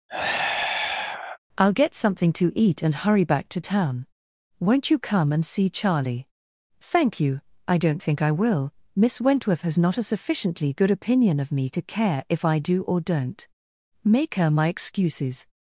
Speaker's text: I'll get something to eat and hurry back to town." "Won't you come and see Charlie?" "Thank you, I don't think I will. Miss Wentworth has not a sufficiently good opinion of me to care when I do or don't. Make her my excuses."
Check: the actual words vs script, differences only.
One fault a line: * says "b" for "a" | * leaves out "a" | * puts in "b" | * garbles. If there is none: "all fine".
* says "if" for "when"